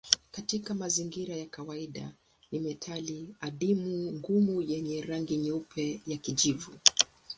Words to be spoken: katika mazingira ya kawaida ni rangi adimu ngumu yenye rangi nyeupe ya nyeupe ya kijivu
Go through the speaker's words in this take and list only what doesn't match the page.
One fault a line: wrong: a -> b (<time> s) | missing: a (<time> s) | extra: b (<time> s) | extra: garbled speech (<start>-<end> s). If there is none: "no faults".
wrong: rangi -> metali (2.6 s)
missing: nyeupe ya (6.2 s)